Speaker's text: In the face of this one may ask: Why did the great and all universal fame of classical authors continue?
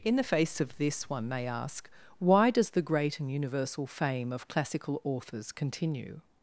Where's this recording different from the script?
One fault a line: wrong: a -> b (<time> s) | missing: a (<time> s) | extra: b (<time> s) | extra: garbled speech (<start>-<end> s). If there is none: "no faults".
wrong: did -> does (2.5 s)
missing: all (3.3 s)